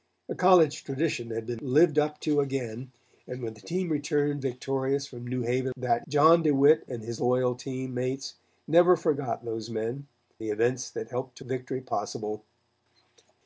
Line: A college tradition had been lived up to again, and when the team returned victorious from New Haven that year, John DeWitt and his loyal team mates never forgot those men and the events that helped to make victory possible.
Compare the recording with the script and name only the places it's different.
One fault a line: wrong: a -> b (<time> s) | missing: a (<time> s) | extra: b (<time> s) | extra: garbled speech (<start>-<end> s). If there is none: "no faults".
missing: year (6.1 s)
missing: and (10.1 s)
missing: make (11.4 s)